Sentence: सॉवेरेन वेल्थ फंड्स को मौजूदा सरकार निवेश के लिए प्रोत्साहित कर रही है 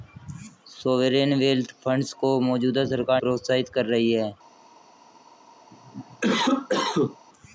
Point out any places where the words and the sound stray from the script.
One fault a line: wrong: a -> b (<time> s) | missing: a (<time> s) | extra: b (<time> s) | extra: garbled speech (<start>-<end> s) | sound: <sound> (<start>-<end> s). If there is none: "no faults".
missing: निवेश के लिए (3.2 s)
sound: cough (5.7-7.2 s)